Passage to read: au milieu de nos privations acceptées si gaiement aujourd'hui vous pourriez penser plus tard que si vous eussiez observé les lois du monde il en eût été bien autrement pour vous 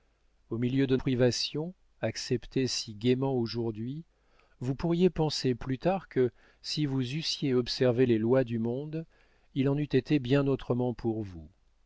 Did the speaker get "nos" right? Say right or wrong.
wrong